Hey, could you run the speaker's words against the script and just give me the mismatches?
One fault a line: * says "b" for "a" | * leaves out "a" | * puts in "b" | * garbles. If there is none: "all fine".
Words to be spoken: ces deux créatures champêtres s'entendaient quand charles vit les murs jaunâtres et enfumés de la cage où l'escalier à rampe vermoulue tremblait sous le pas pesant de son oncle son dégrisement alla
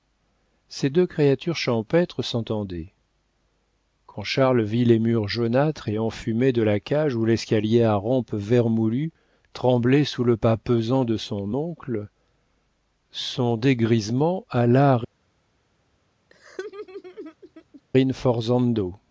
all fine